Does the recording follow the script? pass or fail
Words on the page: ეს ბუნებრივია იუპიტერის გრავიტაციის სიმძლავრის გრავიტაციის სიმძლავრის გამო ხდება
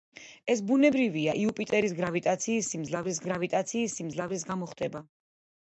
pass